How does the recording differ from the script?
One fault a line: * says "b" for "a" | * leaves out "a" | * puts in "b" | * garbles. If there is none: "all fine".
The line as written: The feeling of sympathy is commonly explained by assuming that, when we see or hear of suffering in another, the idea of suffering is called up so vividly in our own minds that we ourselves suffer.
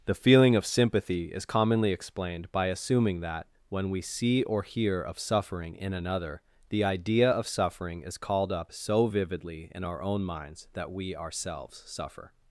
all fine